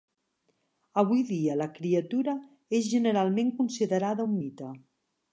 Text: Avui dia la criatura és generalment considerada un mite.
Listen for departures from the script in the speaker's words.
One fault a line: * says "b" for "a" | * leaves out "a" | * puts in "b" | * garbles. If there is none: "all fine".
all fine